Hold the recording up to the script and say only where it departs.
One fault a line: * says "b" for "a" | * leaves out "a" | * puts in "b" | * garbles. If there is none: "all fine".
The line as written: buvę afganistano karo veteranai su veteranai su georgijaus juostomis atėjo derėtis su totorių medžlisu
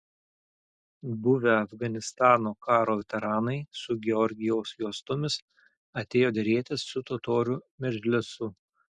* leaves out "veteranai su"